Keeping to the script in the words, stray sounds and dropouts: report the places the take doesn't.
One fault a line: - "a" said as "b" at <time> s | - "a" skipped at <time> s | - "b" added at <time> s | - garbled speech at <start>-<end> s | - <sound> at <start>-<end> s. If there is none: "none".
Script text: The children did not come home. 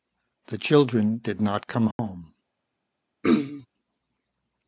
- dropout at 1.9-2.0 s
- throat clearing at 3.2-3.7 s